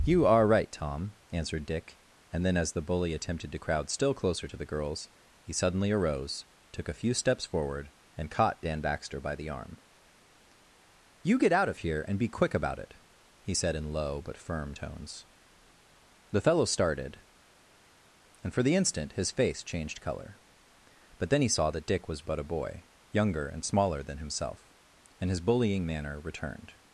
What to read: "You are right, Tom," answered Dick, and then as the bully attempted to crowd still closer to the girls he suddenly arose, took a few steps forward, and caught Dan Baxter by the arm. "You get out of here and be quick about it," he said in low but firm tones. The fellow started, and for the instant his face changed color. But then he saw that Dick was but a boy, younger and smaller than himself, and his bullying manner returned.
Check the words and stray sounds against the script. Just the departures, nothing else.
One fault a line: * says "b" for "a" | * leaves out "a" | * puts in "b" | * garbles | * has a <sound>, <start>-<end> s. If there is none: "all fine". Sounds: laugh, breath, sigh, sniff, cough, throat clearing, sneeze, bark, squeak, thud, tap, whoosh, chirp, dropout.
all fine